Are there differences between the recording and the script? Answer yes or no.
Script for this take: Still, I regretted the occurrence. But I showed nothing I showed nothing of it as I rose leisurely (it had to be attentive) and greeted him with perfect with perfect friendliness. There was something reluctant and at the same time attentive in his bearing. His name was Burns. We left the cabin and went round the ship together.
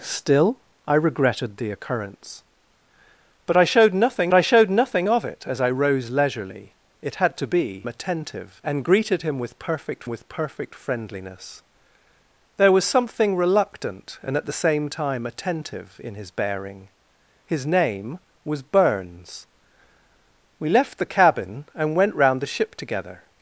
no